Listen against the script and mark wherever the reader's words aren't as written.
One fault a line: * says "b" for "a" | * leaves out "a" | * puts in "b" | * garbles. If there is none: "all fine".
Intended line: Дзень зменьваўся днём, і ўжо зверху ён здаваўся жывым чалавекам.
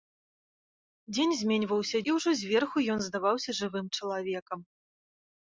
* leaves out "днём"